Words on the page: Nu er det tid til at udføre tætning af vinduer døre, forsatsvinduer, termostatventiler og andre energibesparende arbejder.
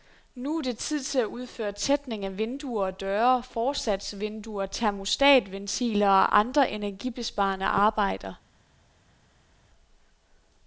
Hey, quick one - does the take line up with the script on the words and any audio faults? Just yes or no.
no